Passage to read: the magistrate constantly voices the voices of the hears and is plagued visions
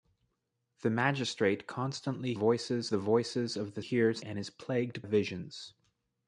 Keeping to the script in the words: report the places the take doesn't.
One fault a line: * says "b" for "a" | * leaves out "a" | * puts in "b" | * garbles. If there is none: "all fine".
all fine